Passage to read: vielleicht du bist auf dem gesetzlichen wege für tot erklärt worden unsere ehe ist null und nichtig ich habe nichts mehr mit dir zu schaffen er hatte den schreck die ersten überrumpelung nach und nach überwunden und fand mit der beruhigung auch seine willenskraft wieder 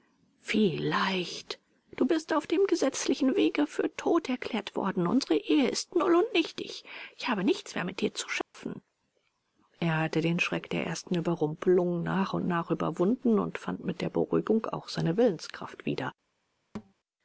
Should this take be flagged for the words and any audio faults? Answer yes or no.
yes